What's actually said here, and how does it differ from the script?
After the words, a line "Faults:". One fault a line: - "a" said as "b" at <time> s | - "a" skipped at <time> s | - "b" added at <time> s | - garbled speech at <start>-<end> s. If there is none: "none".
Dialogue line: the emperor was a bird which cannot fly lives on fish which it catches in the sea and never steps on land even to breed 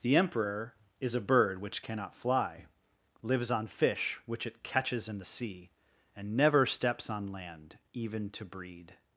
the emperor is a bird which cannot fly lives on fish which it catches in the sea and never steps on land even to breed
Faults:
- "was" said as "is" at 1.0 s